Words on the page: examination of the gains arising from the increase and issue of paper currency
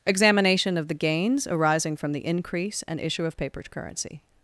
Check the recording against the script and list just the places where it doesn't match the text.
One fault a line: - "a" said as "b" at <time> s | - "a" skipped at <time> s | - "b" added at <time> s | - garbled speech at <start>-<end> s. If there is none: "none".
none